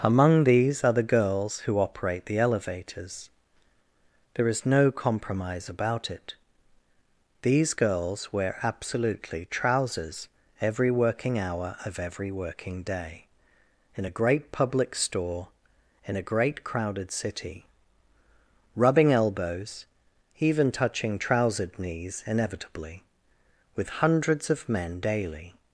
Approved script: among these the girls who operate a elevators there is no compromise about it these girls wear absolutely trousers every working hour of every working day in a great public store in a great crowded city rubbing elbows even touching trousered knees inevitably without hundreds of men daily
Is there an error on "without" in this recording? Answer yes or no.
yes